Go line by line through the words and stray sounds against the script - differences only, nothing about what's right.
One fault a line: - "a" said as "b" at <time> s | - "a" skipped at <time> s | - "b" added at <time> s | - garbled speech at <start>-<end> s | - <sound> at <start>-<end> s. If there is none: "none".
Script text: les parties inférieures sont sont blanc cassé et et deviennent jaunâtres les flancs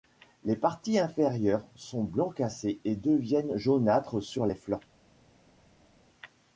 - "sont" skipped at 2.0 s
- "et" skipped at 3.0 s
- "sur" added at 4.2 s